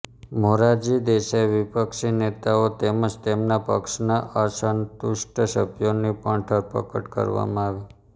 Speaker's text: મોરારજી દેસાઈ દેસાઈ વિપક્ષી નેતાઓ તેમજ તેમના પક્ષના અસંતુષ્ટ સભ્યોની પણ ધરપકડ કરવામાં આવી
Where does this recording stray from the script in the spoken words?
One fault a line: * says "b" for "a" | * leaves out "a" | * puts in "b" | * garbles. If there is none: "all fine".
* leaves out "દેસાઈ"